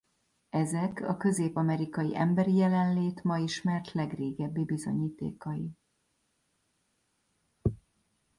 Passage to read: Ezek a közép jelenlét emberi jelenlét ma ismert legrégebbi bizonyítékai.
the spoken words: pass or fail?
fail